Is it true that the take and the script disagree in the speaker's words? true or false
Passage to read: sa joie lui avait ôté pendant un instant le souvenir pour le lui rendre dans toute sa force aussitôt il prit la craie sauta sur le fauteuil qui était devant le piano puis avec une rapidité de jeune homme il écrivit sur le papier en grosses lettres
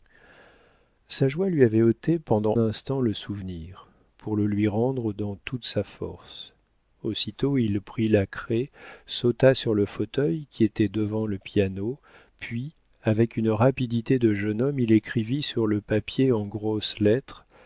true